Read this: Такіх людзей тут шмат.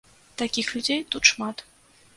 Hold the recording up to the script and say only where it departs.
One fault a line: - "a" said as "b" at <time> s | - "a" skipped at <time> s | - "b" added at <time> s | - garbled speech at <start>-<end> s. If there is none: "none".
none